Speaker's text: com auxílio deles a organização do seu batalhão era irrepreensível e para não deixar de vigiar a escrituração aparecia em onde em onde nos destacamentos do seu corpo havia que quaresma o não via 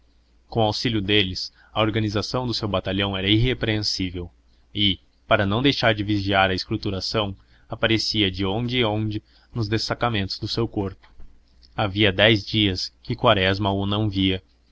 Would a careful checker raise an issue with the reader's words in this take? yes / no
yes